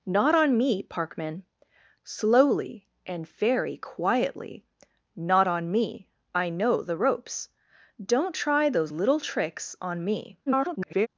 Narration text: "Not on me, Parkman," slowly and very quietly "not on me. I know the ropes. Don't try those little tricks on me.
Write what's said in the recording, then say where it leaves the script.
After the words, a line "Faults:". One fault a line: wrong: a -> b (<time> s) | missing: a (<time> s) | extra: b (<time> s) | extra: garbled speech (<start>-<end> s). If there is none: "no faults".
"Not on me, Parkman," slowly and very quietly "not on me. I know the ropes. Don't try those little tricks on me. [garbled]
Faults:
extra: garbled speech (10.5-11.1 s)